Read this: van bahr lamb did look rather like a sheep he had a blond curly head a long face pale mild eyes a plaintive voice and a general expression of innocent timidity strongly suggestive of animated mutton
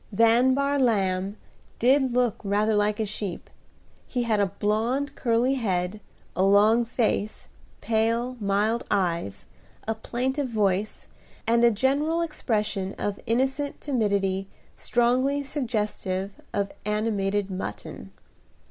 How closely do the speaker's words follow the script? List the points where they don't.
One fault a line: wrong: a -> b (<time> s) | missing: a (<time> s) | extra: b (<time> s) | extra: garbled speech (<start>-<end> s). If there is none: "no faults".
no faults